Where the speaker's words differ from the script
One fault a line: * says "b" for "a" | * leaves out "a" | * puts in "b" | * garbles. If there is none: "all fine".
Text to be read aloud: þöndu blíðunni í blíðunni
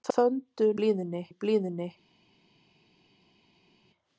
all fine